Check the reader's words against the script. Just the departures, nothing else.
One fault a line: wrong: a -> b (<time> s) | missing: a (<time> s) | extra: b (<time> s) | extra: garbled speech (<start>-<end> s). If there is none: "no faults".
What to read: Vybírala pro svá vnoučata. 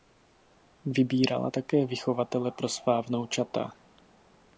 extra: také vychovatele (1.5 s)